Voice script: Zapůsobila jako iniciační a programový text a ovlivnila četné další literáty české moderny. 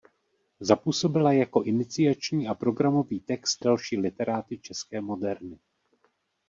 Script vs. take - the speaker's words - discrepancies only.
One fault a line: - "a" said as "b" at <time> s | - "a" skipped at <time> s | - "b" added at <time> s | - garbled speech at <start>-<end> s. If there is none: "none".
- "a ovlivnila četné" skipped at 3.6 s